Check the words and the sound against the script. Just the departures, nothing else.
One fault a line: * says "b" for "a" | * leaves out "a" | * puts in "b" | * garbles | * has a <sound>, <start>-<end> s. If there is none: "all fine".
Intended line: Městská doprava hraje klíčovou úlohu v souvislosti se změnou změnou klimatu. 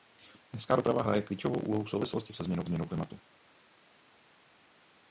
all fine